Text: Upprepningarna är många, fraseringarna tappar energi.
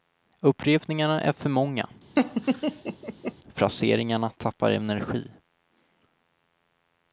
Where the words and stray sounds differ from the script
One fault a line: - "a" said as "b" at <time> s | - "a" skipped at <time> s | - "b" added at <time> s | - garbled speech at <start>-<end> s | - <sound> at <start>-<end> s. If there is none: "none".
- "för" added at 1.3 s
- laugh at 2.2-3.3 s